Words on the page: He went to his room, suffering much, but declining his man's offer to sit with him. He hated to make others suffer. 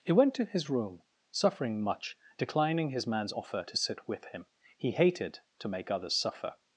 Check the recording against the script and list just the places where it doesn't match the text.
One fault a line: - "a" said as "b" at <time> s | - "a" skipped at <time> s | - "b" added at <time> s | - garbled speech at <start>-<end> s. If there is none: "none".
- "but" skipped at 2.2 s